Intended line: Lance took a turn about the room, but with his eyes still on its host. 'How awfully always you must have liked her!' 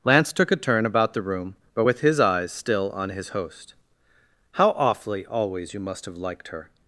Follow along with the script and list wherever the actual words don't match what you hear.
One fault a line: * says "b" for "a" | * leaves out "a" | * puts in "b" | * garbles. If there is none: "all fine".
* says "his" for "its"